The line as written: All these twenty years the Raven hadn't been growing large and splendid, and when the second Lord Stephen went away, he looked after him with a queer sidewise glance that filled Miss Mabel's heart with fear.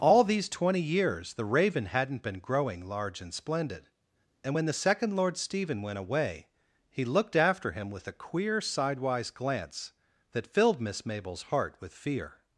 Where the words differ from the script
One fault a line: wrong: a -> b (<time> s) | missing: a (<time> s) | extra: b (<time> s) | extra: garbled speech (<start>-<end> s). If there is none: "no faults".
no faults